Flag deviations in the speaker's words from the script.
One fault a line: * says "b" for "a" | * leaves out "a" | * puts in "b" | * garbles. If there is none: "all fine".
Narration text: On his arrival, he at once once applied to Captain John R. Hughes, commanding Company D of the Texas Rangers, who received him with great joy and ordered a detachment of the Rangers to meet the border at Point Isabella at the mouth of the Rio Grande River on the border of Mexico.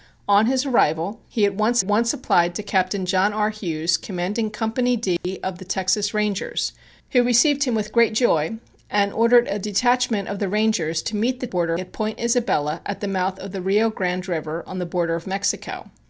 all fine